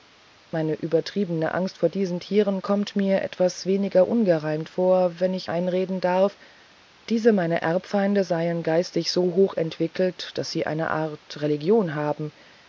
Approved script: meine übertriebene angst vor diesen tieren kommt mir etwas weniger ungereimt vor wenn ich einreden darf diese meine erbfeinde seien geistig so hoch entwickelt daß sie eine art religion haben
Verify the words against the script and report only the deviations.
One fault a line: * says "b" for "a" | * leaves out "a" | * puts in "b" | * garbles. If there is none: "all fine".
all fine